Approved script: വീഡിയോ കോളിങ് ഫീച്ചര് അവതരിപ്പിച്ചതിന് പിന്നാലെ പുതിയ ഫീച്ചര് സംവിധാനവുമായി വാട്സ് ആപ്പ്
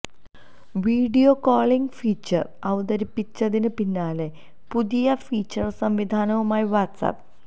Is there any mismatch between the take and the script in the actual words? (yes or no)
no